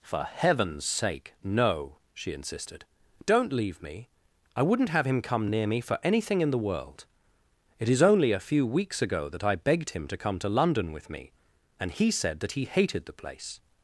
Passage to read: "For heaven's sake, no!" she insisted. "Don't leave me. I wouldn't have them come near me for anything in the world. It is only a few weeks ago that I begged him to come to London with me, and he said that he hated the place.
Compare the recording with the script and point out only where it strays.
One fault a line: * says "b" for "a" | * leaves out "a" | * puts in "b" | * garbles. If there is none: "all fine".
* says "him" for "them"